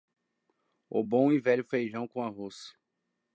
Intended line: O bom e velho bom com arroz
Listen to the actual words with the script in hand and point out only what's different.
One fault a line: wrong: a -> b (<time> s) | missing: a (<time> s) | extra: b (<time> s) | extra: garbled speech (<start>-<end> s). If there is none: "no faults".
wrong: bom -> feijão (1.6 s)